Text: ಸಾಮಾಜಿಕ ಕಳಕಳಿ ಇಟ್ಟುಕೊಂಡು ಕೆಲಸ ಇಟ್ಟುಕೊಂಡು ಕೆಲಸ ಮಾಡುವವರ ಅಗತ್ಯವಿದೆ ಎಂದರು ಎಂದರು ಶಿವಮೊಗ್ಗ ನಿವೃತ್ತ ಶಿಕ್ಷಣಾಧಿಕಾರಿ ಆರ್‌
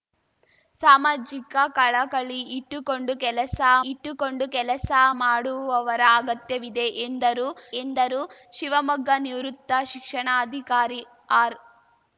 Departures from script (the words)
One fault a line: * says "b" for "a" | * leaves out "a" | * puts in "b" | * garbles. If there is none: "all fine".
all fine